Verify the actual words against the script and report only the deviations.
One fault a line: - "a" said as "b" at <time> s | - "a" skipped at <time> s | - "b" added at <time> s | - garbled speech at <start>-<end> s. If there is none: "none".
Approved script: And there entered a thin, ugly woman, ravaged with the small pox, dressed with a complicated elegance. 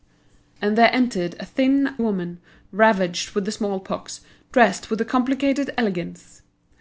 - "ugly" skipped at 2.0 s